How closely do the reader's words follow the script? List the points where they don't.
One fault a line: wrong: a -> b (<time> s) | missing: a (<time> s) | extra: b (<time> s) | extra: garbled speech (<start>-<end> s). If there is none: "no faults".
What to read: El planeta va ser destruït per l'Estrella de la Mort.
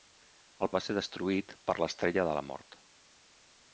missing: planeta (0.7 s)